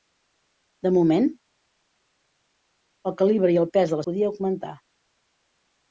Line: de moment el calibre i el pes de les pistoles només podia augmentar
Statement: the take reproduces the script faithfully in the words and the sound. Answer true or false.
false